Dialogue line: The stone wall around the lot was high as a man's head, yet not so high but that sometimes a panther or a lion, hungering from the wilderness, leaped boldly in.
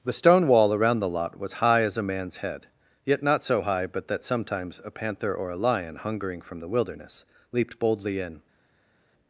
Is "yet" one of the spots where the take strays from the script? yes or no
no